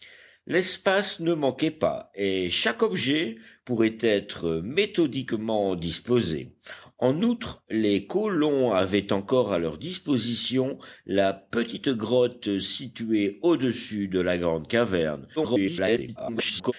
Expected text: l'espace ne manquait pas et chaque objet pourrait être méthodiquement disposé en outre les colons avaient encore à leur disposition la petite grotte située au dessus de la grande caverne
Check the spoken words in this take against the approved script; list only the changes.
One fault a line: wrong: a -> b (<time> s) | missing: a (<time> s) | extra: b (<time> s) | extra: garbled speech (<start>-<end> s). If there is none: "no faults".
extra: garbled speech (15.4-16.7 s)